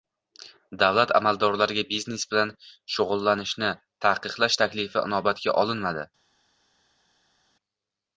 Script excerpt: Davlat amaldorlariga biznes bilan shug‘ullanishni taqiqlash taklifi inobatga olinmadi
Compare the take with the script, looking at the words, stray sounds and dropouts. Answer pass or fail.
pass